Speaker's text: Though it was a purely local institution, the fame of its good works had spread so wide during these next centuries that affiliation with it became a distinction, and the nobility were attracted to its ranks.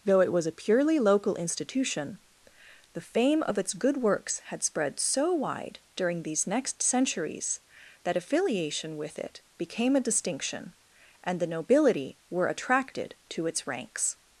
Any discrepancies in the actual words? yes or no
no